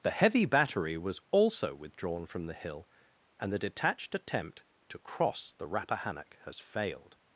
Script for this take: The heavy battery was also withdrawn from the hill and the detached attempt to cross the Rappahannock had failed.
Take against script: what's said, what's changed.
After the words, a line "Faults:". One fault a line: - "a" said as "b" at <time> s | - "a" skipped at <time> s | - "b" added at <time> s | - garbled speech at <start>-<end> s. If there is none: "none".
The heavy battery was also withdrawn from the hill and the detached attempt to cross the Rappahannock has failed.
Faults:
- "had" said as "has" at 6.5 s